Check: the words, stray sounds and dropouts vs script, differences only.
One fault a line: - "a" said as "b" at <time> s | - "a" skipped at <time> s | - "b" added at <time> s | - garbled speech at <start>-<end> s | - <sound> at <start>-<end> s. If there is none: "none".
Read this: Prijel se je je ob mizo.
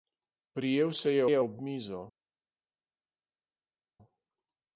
none